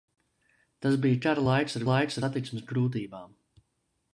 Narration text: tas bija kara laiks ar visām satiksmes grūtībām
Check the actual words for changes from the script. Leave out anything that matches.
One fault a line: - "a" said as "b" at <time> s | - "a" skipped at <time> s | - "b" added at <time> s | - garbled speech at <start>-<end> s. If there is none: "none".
- "visām" said as "laiks" at 1.9 s